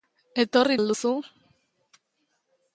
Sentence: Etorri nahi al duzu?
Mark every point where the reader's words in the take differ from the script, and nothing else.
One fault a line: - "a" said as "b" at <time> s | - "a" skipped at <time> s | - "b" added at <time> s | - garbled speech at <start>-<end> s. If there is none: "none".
- "nahi" skipped at 0.8 s